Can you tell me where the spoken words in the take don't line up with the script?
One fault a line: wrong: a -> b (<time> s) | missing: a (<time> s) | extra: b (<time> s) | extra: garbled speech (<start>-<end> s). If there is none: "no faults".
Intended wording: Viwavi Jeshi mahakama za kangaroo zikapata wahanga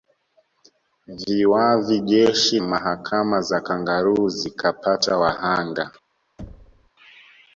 no faults